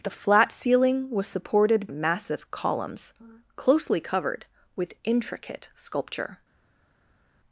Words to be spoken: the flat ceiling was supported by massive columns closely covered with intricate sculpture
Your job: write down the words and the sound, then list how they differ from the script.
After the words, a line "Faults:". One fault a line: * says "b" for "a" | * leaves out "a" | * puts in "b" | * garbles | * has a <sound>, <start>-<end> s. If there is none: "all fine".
the flat ceiling was supported massive columns closely covered with intricate sculpture
Faults:
* leaves out "by"